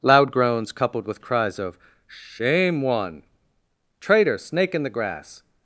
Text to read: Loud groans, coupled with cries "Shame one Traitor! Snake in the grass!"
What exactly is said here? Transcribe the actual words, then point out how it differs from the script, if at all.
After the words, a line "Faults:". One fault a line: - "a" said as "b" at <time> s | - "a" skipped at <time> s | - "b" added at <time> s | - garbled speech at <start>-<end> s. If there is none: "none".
Loud groans, coupled with cries of "Shame one Traitor! Snake in the grass!"
Faults:
- "of" added at 1.6 s